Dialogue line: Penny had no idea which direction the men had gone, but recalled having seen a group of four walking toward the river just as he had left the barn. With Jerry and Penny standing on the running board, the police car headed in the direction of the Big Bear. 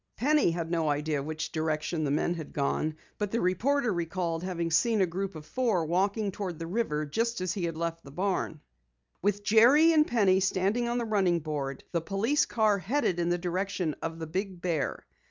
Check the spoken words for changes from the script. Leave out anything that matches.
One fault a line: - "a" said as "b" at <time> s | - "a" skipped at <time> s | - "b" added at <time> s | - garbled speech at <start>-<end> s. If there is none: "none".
- "the reporter" added at 3.3 s